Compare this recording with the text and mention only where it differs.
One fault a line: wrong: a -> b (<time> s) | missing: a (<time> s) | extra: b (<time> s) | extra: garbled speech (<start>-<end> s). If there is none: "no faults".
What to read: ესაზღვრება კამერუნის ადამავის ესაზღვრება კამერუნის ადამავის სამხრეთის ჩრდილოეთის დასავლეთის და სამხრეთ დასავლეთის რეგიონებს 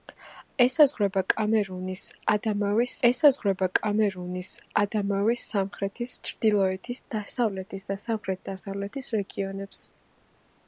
no faults